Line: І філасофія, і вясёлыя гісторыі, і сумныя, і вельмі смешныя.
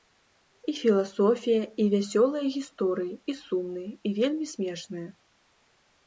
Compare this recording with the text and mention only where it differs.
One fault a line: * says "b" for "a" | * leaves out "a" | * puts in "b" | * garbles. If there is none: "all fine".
all fine